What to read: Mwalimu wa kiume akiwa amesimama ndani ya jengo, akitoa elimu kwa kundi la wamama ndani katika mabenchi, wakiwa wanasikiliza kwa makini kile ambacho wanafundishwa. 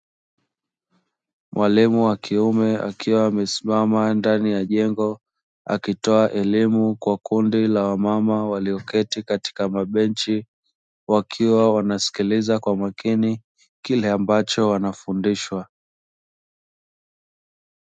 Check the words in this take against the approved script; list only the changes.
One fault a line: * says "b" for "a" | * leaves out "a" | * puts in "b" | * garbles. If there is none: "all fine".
* says "walioketi" for "ndani"